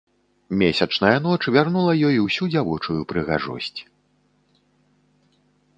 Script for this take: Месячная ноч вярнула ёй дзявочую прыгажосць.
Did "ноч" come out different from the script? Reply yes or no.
no